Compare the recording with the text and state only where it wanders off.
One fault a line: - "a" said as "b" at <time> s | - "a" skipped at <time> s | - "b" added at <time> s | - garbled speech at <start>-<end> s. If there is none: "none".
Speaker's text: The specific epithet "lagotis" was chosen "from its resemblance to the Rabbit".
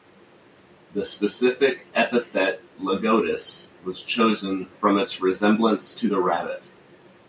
none